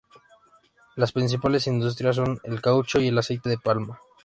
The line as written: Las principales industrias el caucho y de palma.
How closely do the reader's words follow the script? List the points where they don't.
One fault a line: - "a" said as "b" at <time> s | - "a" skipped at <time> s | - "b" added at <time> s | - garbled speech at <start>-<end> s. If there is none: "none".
- "son" added at 2.1 s
- "el aceite" added at 3.1 s